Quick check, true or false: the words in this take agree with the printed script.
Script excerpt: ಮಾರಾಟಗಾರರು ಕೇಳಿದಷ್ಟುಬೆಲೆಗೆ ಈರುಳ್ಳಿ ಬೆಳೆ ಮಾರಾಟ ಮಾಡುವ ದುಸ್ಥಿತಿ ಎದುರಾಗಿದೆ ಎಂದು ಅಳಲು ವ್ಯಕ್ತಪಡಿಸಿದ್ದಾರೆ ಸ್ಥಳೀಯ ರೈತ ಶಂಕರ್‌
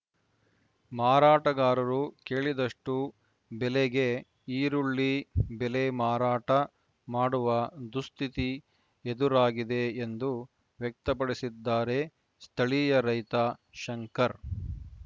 false